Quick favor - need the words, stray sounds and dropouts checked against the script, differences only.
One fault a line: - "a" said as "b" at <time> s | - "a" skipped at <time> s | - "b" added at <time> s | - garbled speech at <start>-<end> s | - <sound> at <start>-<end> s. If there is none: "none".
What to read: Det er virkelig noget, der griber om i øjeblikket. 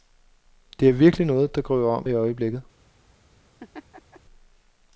- laugh at 3.6-4.2 s